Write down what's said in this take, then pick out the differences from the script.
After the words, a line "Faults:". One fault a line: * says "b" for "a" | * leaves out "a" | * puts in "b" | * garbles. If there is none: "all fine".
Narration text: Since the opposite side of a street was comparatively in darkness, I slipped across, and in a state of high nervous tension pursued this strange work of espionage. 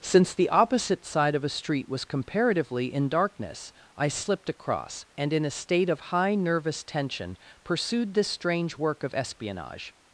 Since the opposite side of a street was comparatively in darkness, I slipped across, and in a state of high nervous tension pursued this strange work of espionage.
Faults:
all fine